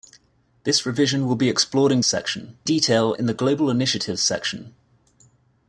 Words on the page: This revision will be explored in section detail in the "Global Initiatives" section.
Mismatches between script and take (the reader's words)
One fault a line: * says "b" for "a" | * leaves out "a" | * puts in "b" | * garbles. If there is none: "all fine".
all fine